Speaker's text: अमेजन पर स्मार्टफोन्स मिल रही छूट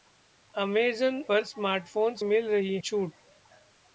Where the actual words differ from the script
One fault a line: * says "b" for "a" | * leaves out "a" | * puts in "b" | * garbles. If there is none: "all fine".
all fine